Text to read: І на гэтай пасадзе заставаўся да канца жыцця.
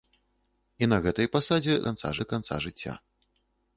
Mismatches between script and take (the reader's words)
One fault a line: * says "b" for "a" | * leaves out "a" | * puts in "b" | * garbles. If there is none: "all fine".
* says "канца" for "заставаўся"